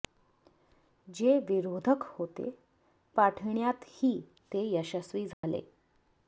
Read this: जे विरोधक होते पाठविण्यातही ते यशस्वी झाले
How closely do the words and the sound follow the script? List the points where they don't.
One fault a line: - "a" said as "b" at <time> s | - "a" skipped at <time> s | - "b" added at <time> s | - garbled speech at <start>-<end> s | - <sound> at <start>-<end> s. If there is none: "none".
- dropout at 5.3-5.4 s